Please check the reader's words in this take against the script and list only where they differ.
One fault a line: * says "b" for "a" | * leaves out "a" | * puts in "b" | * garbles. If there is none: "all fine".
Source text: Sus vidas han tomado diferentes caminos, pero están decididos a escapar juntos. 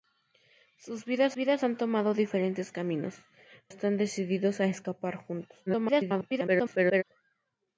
* puts in "vidas"
* leaves out "pero"
* garbles